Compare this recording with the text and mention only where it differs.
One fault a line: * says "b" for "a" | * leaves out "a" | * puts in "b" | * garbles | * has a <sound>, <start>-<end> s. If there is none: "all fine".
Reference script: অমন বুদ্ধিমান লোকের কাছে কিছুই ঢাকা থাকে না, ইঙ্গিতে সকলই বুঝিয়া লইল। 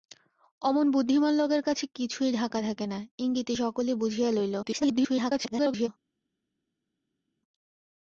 * garbles